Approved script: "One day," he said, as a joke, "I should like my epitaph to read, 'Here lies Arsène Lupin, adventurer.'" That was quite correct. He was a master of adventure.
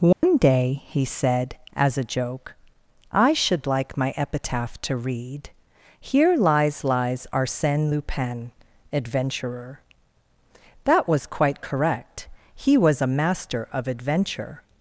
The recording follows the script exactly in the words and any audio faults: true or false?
false